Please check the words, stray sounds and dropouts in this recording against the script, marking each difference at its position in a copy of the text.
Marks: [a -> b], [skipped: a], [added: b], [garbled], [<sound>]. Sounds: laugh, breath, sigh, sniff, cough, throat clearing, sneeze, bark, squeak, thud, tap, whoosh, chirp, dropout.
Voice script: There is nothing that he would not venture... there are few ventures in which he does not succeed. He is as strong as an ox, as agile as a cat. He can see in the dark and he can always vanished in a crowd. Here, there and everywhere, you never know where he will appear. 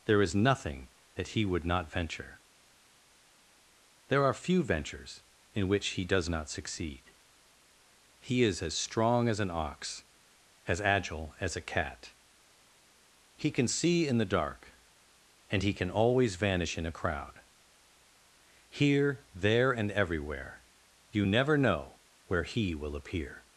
There is nothing that he would not venture... there are few ventures in which he does not succeed. He is as strong as an ox, as agile as a cat. He can see in the dark and he can always [vanished -> vanish] in a crowd. Here, there and everywhere, you never know where he will appear.